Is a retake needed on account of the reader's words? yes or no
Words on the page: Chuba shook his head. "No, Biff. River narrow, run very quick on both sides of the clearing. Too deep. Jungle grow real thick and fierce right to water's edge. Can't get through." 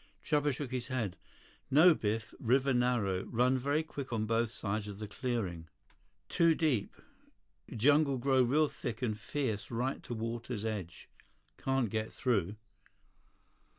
no